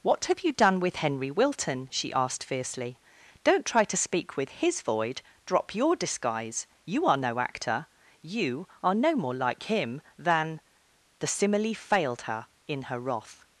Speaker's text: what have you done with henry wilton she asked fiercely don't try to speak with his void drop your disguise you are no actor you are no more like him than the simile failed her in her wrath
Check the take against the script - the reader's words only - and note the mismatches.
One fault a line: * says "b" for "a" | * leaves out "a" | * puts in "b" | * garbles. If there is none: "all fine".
all fine